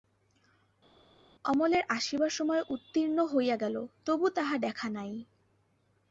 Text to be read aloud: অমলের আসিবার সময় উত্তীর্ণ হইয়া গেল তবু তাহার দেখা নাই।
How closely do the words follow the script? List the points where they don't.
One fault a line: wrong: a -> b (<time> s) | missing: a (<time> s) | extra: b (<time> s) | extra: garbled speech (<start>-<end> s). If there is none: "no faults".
no faults